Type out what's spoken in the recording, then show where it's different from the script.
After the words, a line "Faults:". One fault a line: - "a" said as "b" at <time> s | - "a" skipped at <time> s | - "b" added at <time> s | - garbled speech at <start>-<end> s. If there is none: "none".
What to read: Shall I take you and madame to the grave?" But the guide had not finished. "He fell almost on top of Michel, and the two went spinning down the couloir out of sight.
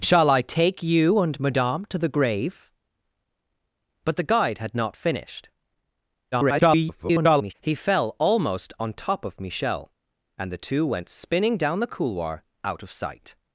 Shall I take you and madame to the grave?" But the guide had not finished. [garbled] "He fell almost on top of Michel, and the two went spinning down the couloir out of sight.
Faults:
- garbled speech at 6.3-7.5 s